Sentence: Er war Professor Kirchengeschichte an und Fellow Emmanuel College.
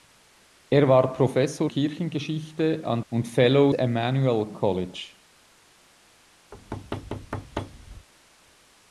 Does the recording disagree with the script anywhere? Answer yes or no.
no